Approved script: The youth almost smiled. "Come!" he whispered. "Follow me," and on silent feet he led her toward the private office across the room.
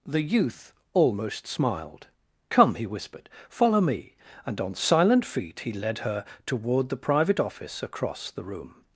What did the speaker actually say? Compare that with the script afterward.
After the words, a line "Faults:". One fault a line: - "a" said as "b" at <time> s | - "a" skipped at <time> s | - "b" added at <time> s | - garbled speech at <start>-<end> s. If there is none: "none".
The youth almost smiled. "Come!" he whispered. "Follow me," and on silent feet he led her toward the private office across the room.
Faults:
none